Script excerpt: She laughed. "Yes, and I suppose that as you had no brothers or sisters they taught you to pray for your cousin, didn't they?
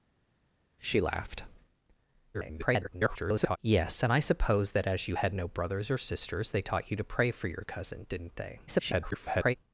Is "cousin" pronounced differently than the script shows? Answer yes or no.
no